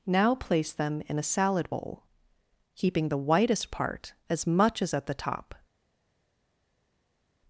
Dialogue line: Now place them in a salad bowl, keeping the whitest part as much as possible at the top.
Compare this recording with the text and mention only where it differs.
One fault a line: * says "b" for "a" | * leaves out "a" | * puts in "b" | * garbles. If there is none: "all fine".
* leaves out "possible"